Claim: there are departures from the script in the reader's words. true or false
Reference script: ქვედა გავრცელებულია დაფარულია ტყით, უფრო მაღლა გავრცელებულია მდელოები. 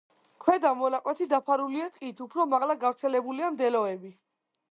true